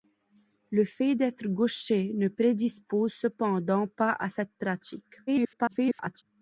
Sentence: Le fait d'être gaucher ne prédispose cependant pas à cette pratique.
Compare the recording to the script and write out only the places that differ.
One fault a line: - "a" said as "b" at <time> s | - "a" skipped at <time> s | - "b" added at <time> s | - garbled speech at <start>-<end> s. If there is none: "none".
- garbled speech at 5.3-6.2 s